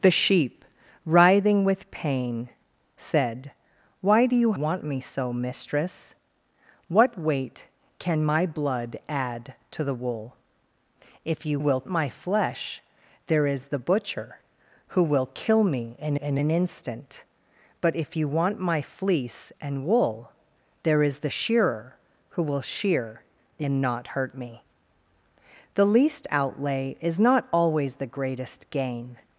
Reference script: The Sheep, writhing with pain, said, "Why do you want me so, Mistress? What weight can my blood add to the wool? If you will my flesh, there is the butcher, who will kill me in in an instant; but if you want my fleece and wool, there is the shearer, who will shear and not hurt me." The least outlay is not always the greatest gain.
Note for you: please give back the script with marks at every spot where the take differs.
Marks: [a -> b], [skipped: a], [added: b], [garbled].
The Sheep, writhing with pain, said, "Why do you want me so, Mistress? What weight can my blood add to the wool? If you will my flesh, there is the butcher, who will kill me in in an instant; but if you want my fleece and wool, there is the shearer, who will shear and not hurt me." The least outlay is not always the greatest gain.